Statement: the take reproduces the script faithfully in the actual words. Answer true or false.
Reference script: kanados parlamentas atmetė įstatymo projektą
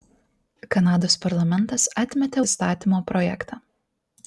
true